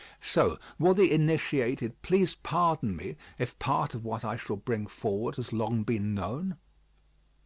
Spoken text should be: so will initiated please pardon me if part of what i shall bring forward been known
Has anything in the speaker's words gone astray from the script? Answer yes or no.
yes